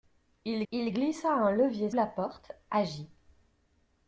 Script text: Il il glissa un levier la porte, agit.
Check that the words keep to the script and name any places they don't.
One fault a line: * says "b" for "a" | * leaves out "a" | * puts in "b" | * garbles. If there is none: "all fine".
all fine